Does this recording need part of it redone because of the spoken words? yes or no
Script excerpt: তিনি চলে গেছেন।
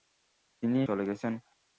no